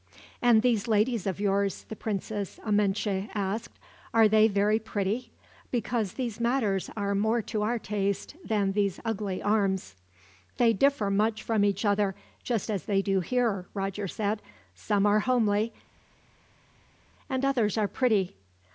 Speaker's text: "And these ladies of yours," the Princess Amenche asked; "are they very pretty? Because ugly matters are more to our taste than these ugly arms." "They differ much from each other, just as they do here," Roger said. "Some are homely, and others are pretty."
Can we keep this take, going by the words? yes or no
no